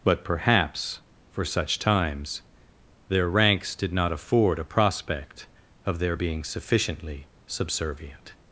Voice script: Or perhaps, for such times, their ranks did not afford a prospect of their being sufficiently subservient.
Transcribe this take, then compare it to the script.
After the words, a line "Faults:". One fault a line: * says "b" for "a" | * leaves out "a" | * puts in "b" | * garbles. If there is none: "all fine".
But perhaps, for such times, their ranks did not afford a prospect of their being sufficiently subservient.
Faults:
* says "But" for "Or"